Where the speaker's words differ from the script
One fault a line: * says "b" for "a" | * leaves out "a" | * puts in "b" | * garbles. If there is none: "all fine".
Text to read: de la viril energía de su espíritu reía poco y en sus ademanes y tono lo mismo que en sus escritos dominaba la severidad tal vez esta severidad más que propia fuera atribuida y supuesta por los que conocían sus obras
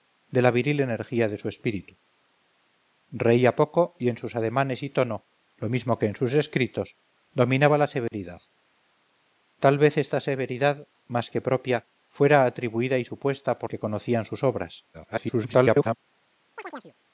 * leaves out "los"
* garbles